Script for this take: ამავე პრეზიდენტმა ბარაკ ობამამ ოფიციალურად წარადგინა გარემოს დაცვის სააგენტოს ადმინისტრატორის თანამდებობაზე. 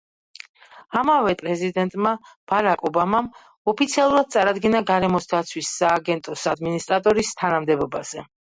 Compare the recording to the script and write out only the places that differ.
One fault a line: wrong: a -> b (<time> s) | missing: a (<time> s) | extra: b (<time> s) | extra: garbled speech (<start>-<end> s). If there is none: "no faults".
no faults